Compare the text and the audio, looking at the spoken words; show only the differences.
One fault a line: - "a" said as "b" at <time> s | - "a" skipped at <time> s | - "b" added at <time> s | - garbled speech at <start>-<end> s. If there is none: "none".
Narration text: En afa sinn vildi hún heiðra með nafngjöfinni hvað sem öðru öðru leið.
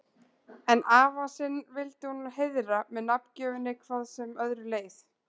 - "öðru" skipped at 4.7 s